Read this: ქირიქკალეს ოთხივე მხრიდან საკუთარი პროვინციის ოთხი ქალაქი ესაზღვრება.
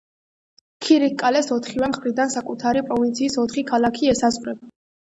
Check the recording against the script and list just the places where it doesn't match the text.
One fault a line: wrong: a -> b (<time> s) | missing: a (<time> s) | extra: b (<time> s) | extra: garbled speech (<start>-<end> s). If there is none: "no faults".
no faults